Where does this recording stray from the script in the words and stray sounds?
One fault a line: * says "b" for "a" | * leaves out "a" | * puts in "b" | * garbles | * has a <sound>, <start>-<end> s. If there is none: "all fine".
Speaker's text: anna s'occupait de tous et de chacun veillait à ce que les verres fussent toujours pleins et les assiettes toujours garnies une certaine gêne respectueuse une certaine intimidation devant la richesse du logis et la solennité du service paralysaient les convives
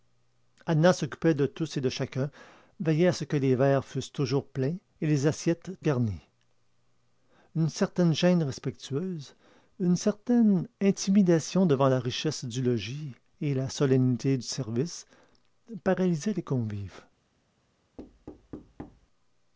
* leaves out "toujours"
* has a thud, 18.0-19.1 s